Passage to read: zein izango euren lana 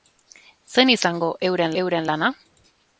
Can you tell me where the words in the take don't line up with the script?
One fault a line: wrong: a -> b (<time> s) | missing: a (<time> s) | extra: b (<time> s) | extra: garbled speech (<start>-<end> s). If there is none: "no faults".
extra: euren (1.8 s)